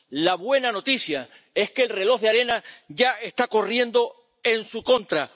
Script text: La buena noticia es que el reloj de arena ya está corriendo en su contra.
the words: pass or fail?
pass